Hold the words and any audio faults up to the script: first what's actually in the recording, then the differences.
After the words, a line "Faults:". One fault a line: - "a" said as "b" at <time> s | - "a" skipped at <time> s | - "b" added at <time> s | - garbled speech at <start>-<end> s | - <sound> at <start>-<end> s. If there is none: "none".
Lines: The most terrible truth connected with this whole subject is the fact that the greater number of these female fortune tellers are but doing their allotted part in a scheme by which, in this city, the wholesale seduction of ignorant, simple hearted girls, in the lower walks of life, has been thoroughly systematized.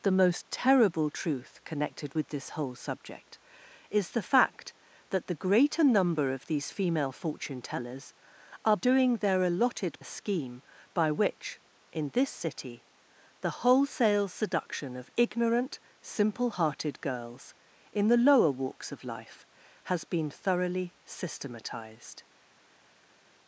The most terrible truth connected with this whole subject is the fact that the greater number of these female fortune tellers are doing their allotted a scheme by which, in this city, the wholesale seduction of ignorant, simple hearted girls, in the lower walks of life, has been thoroughly systematized.
Faults:
- "but" skipped at 8.8 s
- "part in" skipped at 10.0 s